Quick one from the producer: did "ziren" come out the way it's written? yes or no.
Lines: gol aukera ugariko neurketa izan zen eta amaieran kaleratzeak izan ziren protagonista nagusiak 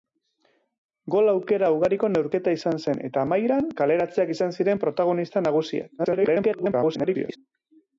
yes